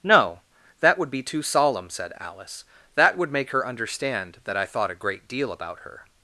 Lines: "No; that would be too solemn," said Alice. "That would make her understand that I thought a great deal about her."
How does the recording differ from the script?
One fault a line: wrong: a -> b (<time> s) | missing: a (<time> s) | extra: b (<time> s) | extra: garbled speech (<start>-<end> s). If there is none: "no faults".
no faults